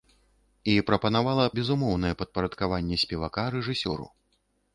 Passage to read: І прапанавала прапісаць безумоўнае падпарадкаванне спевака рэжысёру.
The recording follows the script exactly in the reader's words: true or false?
false